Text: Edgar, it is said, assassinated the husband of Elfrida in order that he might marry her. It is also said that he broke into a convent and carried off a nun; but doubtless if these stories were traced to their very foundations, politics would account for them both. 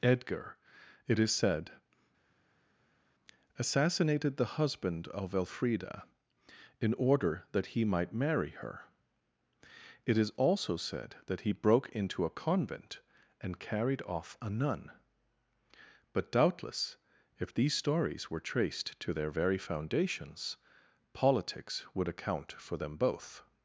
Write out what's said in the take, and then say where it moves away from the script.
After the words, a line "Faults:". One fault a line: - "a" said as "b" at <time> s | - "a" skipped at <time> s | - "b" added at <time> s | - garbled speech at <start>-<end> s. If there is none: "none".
Edgar, it is said, assassinated the husband of Elfrida in order that he might marry her. It is also said that he broke into a convent and carried off a nun; but doubtless if these stories were traced to their very foundations, politics would account for them both.
Faults:
none